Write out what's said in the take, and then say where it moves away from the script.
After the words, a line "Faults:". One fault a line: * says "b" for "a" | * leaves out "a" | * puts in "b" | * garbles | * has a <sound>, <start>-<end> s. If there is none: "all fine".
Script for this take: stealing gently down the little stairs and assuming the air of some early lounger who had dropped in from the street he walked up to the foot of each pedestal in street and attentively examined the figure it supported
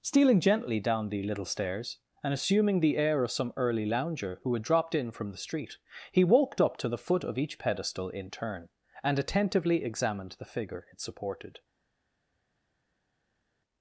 stealing gently down the little stairs and assuming the air of some early lounger who had dropped in from the street he walked up to the foot of each pedestal in turn and attentively examined the figure it supported
Faults:
* says "turn" for "street"